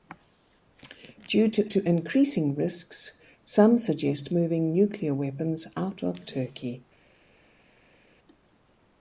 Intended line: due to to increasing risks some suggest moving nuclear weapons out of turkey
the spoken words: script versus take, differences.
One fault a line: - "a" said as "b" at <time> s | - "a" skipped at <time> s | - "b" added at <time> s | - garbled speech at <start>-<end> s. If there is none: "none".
none